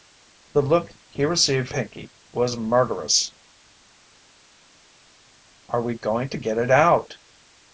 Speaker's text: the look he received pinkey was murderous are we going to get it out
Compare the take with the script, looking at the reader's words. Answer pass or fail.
pass